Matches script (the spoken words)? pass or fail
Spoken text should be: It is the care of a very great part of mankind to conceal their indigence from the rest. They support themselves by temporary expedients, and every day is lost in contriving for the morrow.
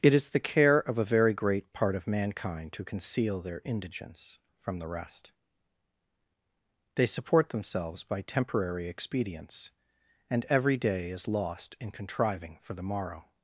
pass